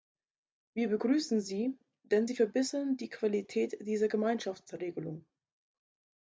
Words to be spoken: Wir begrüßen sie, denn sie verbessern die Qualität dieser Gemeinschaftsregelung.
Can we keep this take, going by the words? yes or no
yes